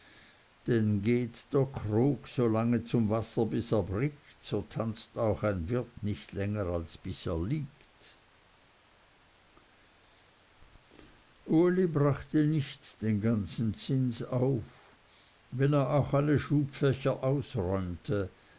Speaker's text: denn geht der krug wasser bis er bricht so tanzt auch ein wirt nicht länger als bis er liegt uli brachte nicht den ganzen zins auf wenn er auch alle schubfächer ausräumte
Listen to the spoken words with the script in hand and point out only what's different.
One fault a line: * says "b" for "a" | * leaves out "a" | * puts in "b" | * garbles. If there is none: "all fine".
* puts in "so lange zum"